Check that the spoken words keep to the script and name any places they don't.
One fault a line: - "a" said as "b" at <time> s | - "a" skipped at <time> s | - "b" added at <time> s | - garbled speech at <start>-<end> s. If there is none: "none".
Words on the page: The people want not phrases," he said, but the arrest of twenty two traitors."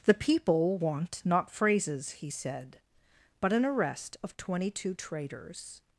- "the" said as "an" at 3.5 s